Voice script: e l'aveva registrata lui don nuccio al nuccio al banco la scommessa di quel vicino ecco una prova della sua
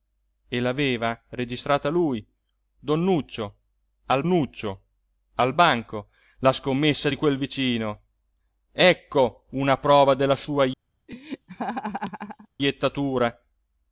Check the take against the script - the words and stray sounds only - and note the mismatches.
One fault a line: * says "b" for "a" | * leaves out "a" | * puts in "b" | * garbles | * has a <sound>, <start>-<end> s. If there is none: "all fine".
* has a laugh, 11.1-12.5 s